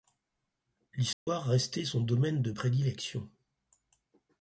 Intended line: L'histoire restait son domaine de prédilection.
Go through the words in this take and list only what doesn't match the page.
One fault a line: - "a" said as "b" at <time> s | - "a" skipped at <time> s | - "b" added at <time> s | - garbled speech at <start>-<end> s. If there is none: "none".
none